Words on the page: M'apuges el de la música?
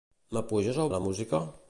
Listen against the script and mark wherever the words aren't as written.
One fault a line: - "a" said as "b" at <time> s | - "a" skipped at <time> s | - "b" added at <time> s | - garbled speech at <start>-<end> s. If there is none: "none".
none